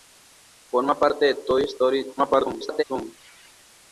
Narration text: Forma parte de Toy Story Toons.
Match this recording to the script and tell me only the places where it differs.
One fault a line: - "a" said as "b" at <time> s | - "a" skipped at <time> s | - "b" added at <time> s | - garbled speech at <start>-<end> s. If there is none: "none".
- garbled speech at 2.2-2.8 s